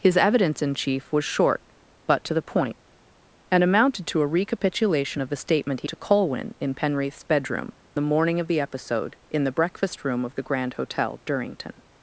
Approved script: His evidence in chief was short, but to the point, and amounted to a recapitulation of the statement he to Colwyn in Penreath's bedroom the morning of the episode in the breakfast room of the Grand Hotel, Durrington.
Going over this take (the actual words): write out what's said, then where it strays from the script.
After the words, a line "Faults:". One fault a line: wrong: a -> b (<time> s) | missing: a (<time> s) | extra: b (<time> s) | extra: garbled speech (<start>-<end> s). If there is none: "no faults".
His evidence in chief was short, but to the point, and amounted to a recapitulation of the statement he to Colwyn in Penreath's bedroom the morning of the episode in the breakfast room of the Grand Hotel, Durrington.
Faults:
no faults